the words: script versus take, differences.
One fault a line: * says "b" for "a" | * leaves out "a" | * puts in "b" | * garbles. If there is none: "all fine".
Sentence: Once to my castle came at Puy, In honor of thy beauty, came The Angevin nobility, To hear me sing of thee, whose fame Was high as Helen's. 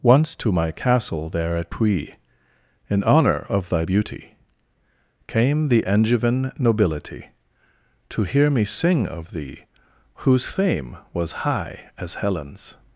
* says "there" for "came"